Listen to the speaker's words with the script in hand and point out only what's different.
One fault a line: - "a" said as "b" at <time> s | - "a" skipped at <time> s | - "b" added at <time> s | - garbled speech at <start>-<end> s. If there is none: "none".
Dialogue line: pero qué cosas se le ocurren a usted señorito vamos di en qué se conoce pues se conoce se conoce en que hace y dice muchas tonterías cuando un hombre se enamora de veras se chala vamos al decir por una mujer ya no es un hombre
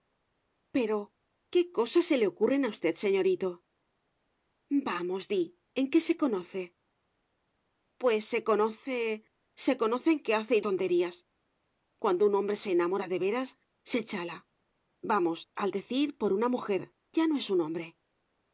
- "dice muchas" skipped at 10.6 s